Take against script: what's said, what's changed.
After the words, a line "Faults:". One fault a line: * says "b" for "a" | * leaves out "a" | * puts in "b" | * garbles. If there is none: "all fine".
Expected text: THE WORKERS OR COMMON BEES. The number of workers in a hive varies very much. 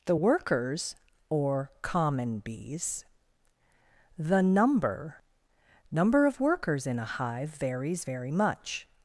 THE WORKERS OR COMMON BEES. The number number of workers in a hive varies very much.
Faults:
* puts in "number"